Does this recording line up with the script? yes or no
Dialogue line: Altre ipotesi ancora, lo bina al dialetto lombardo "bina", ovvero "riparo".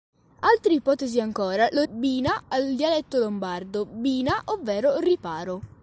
yes